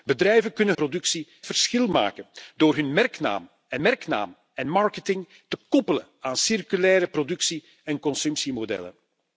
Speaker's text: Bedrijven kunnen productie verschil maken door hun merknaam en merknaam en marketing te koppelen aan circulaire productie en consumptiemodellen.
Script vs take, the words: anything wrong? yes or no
no